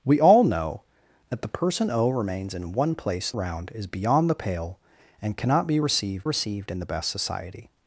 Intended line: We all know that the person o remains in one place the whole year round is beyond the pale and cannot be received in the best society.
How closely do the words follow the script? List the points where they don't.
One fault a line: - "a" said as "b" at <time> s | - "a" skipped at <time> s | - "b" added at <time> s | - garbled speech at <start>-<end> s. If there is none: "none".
- "the whole year" skipped at 3.3 s
- "received" added at 6.2 s